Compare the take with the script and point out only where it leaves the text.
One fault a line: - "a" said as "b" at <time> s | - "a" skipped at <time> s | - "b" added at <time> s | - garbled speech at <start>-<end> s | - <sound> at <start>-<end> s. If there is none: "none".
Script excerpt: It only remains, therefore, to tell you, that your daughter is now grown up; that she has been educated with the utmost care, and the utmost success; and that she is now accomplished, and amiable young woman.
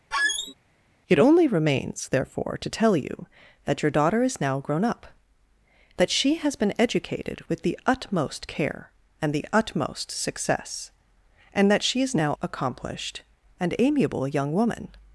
- squeak at 0.1-0.5 s